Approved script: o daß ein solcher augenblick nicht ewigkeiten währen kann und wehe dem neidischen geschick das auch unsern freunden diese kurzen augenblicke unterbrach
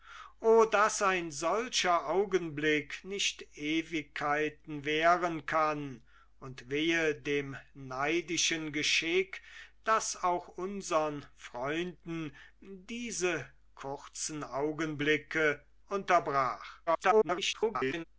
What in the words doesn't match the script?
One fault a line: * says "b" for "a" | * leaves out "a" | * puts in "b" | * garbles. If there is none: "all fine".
* garbles